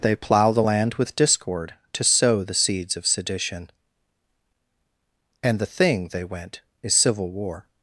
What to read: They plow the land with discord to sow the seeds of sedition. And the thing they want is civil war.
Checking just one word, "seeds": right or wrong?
right